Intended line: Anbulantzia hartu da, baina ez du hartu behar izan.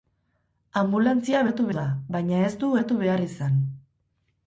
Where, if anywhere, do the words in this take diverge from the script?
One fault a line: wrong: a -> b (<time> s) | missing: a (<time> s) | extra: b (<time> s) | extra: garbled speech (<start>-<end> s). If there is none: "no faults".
no faults